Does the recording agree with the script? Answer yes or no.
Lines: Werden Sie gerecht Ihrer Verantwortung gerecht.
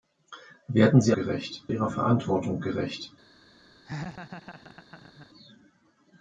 yes